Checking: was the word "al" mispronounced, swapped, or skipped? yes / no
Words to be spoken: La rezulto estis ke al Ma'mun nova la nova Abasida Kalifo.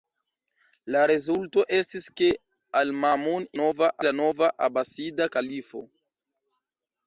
no